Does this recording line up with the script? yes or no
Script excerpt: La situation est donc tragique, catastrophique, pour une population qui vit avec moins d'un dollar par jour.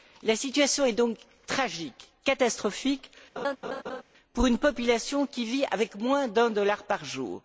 yes